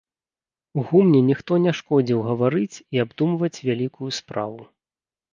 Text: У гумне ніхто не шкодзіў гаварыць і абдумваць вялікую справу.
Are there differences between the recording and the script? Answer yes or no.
no